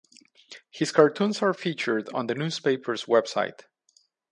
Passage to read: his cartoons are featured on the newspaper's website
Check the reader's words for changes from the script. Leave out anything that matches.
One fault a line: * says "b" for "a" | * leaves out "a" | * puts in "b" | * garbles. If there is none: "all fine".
all fine